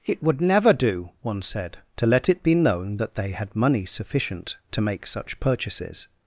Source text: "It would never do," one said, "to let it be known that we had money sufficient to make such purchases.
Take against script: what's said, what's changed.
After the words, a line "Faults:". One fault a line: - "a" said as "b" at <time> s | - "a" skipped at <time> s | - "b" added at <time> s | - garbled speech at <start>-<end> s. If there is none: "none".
"It would never do," one said, "to let it be known that they had money sufficient to make such purchases.
Faults:
- "we" said as "they" at 3.1 s